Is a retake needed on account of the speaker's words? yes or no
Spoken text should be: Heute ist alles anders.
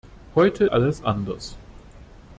yes